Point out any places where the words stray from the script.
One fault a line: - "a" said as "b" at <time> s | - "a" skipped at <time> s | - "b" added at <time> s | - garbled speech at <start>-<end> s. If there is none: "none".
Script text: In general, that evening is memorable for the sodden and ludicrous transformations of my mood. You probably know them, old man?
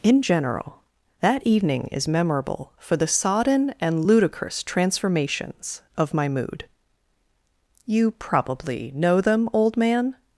none